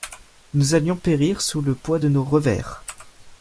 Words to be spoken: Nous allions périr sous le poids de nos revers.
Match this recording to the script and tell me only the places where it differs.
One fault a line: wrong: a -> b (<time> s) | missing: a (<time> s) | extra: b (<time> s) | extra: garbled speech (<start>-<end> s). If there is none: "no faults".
no faults